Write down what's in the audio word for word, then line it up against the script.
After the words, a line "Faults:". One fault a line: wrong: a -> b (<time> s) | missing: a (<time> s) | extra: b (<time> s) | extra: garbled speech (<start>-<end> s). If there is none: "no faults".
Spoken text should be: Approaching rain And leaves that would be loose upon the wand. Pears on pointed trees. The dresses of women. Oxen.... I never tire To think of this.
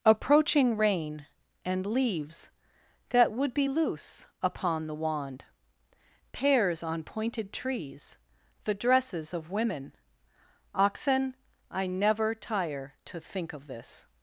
Approaching rain And leaves that would be loose upon the wand. Pears on pointed trees. The dresses of women. Oxen.... I never tire To think of this.
Faults:
no faults